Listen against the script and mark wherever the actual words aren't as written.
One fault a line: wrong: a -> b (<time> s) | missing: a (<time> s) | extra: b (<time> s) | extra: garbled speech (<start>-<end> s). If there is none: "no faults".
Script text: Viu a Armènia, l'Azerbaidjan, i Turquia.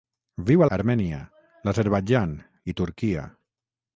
no faults